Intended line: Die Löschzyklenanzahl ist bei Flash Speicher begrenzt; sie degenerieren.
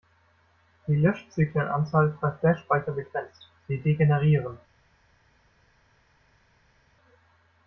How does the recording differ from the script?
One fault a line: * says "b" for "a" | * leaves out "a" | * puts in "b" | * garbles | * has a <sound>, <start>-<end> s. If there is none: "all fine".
all fine